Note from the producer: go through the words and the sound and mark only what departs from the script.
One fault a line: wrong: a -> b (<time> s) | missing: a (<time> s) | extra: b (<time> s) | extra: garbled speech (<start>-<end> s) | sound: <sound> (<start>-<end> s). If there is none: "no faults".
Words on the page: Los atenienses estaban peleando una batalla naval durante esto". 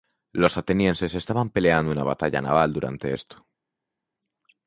no faults